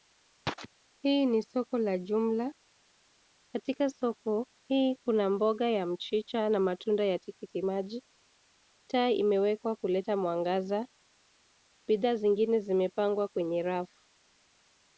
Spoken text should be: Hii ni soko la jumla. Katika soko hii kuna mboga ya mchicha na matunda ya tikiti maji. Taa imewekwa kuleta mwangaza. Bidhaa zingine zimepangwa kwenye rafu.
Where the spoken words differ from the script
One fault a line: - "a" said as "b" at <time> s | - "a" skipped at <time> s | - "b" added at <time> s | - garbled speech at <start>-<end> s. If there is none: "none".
none